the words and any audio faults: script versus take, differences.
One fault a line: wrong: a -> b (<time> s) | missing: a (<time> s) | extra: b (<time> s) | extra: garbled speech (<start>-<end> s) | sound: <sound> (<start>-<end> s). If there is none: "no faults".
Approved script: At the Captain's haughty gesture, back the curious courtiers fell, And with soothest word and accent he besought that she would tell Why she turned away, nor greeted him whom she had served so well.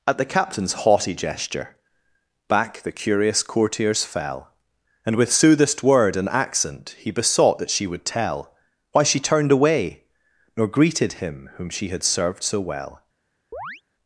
sound: chirp (13.5-13.8 s)